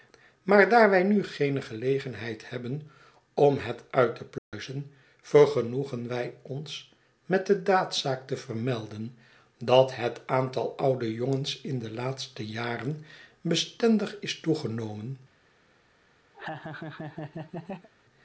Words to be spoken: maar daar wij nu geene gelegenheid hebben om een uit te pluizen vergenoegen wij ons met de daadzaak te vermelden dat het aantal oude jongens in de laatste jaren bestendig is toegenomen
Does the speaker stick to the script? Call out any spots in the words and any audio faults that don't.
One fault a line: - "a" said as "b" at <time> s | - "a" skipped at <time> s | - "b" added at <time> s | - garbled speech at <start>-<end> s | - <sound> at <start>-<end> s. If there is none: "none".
- "een" said as "het" at 3.6 s
- dropout at 4.4-4.5 s
- laugh at 16.3-17.9 s